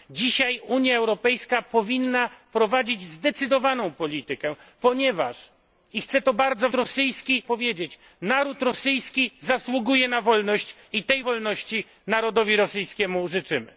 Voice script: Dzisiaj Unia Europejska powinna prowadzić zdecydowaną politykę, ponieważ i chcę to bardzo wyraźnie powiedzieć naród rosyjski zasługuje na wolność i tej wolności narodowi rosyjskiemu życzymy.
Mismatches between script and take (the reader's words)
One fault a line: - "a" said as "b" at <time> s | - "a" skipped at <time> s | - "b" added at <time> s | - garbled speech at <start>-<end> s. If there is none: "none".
- "wyraźnie" said as "rosyjski" at 6.7 s